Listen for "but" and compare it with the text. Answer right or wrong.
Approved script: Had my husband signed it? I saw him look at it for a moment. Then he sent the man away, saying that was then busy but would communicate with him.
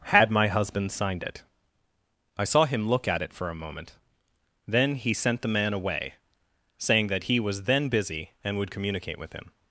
wrong